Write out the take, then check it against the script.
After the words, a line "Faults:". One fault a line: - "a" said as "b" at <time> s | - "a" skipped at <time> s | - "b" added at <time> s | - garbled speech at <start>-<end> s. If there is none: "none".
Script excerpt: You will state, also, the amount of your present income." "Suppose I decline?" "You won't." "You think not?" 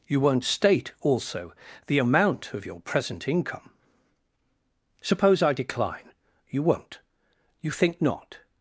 You won't state, also, the amount of your present income." "Suppose I decline?" "You won't." "You think not?"
Faults:
- "will" said as "won't" at 0.2 s